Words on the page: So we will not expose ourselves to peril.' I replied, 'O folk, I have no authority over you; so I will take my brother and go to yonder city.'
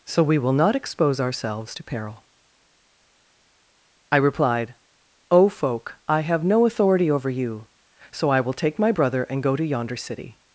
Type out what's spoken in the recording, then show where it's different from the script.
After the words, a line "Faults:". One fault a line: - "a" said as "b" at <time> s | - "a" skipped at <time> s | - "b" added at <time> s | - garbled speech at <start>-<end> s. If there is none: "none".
So we will not expose ourselves to peril.' I replied, 'O folk, I have no authority over you; so I will take my brother and go to yonder city.'
Faults:
none